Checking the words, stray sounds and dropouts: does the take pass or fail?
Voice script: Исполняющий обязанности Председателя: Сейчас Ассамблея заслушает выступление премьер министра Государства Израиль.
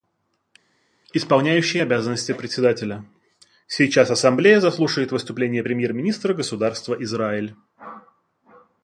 pass